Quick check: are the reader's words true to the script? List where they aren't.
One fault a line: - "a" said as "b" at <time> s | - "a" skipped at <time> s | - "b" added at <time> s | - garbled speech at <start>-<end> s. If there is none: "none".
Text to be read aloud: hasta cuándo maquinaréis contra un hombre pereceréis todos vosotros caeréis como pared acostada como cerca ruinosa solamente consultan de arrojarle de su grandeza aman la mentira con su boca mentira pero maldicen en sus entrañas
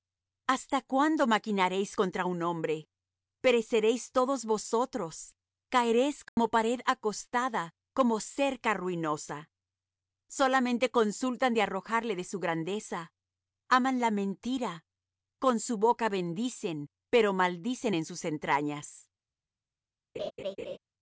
- "mentira" said as "bendicen" at 16.1 s